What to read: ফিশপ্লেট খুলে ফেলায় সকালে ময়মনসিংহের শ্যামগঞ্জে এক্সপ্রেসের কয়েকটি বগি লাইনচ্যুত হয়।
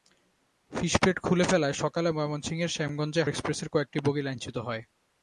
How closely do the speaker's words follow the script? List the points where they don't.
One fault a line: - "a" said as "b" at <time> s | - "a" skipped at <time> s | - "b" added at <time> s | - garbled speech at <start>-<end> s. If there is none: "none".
none